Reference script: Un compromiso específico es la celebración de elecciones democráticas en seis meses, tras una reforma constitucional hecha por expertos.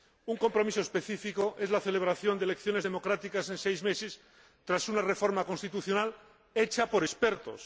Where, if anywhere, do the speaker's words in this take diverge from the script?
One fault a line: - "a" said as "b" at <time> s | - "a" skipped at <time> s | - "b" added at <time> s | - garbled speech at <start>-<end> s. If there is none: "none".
none